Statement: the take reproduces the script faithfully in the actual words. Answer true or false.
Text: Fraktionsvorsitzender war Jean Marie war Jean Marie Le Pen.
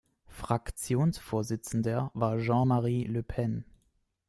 false